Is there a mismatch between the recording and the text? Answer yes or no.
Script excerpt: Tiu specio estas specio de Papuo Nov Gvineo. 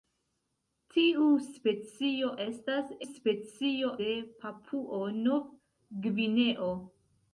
no